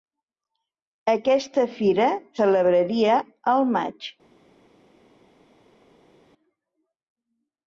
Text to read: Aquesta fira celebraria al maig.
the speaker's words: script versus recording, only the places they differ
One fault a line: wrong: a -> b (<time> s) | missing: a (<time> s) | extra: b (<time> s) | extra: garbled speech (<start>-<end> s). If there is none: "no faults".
no faults